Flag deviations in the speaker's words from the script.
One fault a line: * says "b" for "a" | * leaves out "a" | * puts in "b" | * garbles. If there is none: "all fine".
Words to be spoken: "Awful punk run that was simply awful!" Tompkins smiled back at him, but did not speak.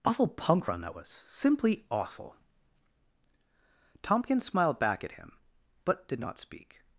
all fine